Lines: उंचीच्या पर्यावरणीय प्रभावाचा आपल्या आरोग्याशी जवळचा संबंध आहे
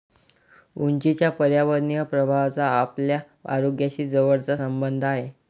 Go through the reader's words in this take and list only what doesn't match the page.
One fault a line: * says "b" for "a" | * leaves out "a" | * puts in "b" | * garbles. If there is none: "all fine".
all fine